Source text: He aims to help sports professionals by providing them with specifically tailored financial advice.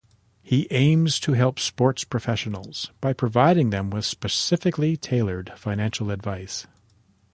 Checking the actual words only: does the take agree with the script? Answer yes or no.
yes